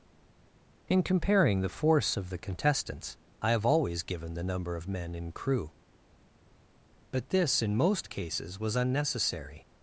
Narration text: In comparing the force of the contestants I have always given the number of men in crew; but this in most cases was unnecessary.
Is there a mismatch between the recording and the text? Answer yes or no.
no